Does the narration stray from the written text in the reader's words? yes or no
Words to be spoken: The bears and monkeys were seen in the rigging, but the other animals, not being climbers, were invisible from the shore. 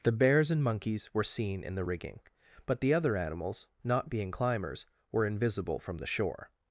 no